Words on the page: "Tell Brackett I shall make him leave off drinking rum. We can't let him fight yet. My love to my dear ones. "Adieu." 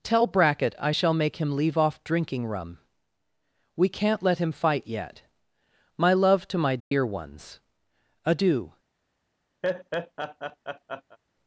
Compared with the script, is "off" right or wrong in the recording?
right